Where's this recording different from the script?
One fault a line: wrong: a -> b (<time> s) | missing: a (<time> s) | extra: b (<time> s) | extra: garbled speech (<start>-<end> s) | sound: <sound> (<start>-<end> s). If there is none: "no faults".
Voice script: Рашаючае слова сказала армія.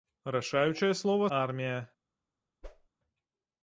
missing: сказала (1.3 s)
sound: whoosh (2.6-2.9 s)